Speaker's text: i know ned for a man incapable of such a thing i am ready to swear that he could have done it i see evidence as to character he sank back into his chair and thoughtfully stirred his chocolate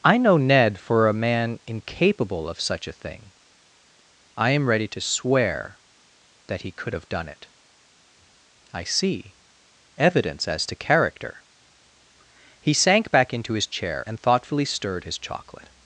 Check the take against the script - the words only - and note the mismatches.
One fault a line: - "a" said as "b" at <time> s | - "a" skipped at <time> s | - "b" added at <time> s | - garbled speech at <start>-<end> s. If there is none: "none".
none